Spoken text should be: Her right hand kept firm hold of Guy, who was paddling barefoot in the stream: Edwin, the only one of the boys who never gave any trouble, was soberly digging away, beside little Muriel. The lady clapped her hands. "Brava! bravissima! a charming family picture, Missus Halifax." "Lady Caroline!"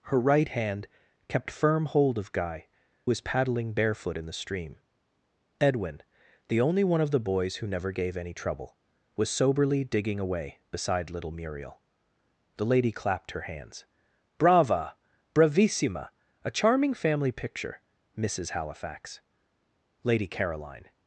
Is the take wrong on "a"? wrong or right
right